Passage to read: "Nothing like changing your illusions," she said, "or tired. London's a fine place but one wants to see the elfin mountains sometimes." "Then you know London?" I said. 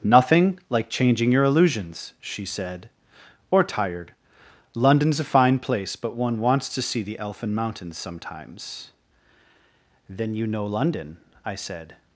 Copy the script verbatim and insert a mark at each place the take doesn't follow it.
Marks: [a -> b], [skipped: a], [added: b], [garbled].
"Nothing like changing your illusions," she said, "or tired. London's a fine place but one wants to see the elfin mountains sometimes." "Then you know London?" I said.